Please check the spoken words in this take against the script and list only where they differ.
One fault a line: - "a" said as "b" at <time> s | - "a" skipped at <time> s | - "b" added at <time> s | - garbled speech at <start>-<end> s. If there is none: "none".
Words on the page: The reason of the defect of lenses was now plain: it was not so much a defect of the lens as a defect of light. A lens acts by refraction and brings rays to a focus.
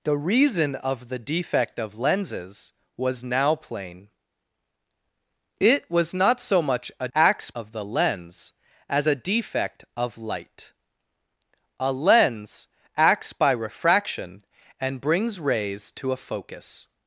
- "defect" said as "acts" at 7.1 s